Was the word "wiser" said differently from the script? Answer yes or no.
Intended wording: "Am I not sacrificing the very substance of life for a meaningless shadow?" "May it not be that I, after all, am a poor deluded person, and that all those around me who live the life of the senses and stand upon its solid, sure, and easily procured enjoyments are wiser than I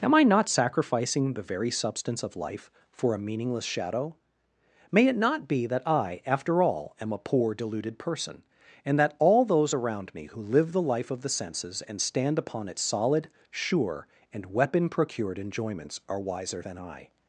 no